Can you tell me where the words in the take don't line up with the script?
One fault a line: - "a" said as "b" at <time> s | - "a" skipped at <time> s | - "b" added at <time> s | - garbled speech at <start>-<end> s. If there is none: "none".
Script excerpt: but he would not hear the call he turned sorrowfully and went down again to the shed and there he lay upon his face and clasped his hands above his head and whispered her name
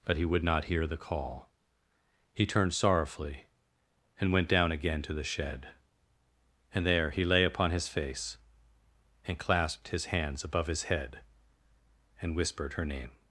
none